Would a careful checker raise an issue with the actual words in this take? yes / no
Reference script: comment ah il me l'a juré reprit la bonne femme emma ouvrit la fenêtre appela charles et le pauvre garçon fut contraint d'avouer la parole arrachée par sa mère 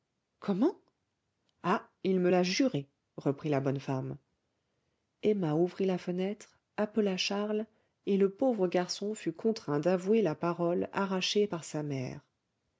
no